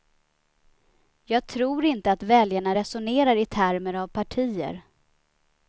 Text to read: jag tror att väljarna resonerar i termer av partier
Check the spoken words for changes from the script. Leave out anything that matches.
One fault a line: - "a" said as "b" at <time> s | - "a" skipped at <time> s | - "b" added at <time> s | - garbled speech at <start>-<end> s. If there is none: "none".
- "inte" added at 1.9 s